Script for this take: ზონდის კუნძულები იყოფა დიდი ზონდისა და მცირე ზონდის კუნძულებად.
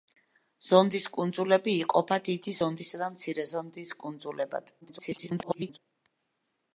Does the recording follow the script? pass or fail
fail